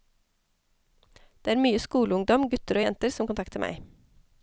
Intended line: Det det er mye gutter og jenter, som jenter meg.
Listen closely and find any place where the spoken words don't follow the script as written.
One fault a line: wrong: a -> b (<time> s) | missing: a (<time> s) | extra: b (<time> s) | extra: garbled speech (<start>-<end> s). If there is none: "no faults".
missing: det (1.5 s)
extra: skoleungdom (1.8 s)
wrong: jenter -> kontakter (3.3 s)